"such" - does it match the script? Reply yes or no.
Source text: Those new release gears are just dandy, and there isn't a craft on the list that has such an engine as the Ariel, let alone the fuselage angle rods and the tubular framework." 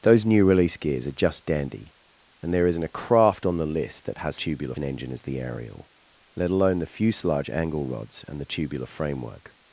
no